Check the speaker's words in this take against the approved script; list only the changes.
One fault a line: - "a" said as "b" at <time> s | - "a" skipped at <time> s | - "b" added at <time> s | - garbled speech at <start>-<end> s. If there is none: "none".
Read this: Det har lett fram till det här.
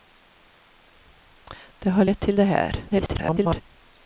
- "fram" skipped at 2.2 s
- garbled speech at 2.9-3.6 s